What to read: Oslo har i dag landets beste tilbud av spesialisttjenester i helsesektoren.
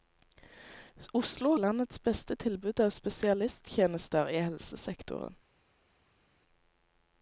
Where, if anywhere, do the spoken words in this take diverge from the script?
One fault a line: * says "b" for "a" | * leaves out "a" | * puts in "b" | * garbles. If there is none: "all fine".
* leaves out "har i dag"